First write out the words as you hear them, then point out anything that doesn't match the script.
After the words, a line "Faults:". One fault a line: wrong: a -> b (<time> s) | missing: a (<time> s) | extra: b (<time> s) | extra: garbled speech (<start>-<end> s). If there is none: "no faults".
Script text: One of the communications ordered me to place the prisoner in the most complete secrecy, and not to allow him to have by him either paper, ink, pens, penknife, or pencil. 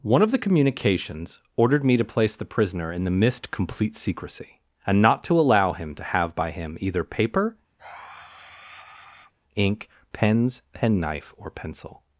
One of the communications ordered me to place the prisoner in the mist complete secrecy, and not to allow him to have by him either paper, ink, pens, penknife, or pencil.
Faults:
wrong: most -> mist (3.1 s)